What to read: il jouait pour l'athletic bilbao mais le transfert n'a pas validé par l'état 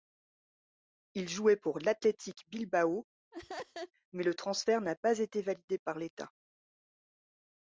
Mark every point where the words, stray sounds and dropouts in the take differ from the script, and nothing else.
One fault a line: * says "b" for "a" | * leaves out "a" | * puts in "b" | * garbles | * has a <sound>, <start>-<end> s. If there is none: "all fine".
* has a laugh, 3.3-3.9 s
* puts in "été"